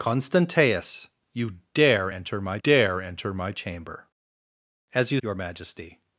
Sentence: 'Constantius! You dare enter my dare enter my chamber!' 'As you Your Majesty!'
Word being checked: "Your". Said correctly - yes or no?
yes